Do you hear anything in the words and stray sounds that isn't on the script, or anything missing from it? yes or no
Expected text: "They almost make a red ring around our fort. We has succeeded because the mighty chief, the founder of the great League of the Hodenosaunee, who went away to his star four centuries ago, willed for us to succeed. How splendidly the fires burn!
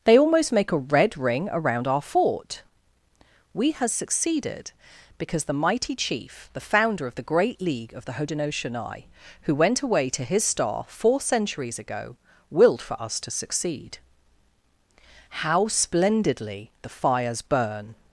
no